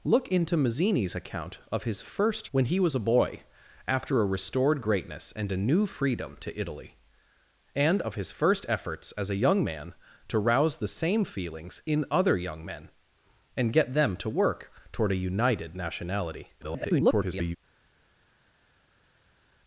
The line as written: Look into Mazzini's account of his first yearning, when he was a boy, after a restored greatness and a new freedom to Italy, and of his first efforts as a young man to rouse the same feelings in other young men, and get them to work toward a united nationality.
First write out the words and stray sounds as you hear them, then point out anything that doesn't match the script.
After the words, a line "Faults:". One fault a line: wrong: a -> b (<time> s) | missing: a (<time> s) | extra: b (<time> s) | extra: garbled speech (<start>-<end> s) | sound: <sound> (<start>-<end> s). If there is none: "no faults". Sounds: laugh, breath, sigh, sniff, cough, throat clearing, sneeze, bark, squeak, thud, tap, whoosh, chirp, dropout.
Look into Mazzini's account of his first when he was a boy, after a restored greatness and a new freedom to Italy, and of his first efforts as a young man to rouse the same feelings in other young men, and get them to work toward a united nationality. [garbled]
Faults:
missing: yearning (2.5 s)
extra: garbled speech (16.6-17.6 s)